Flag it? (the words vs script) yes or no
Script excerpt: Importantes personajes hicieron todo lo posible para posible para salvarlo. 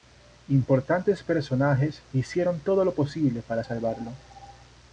yes